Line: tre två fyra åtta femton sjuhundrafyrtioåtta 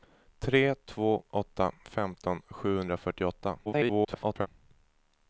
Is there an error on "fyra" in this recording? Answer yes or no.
yes